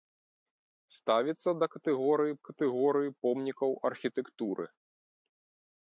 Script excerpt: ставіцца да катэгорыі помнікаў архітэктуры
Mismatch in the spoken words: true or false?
true